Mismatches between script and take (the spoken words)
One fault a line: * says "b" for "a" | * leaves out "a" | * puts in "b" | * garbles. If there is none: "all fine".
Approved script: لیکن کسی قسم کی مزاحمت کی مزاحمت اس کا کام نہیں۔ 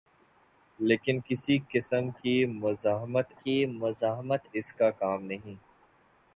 all fine